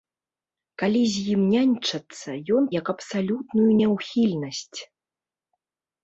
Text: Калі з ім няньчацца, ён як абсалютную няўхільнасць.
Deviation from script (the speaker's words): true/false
false